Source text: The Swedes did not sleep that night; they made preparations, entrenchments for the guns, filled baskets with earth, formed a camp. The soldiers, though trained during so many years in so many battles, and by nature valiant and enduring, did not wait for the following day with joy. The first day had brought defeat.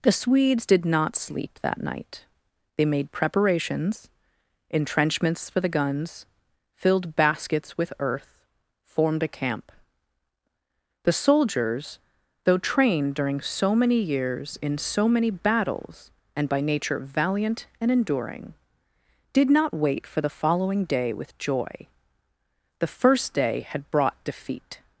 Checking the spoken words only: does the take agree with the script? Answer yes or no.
yes